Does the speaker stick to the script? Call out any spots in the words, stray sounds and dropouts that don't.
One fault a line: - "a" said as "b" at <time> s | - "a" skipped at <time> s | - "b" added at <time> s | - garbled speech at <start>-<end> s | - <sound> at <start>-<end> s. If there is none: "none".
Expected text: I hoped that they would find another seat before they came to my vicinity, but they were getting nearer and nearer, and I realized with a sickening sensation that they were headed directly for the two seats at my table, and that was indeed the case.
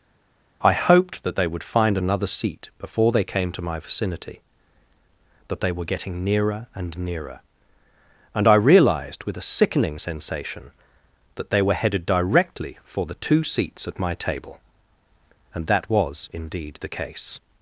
- "but" said as "that" at 5.5 s